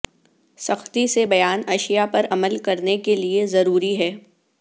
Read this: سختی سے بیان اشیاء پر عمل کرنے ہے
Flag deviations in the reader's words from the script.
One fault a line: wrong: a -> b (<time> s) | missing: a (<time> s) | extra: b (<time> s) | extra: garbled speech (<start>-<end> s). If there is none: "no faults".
extra: کے لئے ضروری (3.0 s)